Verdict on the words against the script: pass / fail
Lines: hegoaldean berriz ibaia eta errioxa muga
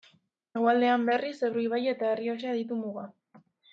fail